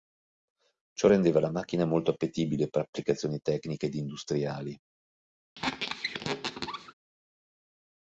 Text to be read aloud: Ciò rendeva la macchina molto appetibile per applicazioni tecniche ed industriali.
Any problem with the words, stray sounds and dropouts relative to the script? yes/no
yes